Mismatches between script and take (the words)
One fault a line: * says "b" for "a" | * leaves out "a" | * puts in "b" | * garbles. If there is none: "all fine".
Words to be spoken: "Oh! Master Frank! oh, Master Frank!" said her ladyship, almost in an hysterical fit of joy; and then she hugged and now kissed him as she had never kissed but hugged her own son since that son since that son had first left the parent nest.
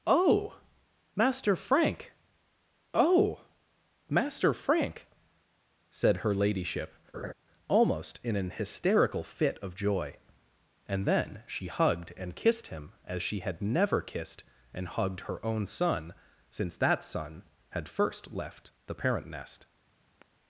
* leaves out "now"
* says "and" for "but"
* leaves out "since that son"